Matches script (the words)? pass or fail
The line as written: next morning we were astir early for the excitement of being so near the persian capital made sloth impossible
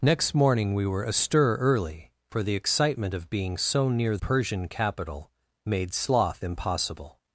fail